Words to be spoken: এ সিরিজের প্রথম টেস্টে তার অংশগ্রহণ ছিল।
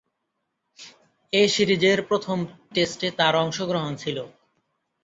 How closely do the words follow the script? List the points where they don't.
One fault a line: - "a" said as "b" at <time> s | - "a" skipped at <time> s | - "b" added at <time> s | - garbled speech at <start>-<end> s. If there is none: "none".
none